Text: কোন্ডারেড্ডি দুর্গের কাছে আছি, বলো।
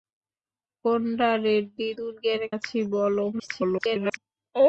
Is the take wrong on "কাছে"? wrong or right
wrong